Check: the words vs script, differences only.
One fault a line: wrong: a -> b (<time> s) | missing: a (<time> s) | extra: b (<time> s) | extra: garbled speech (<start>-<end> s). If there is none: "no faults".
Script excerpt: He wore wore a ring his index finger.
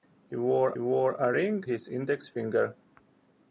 no faults